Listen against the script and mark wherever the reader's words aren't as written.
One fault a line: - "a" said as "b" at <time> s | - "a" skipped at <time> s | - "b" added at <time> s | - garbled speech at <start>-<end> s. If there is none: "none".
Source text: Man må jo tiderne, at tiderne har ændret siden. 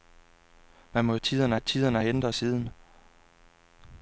none